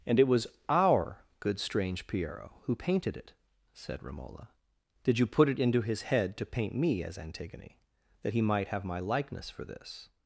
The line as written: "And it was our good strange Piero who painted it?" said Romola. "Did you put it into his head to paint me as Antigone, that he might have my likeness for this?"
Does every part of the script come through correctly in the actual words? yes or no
yes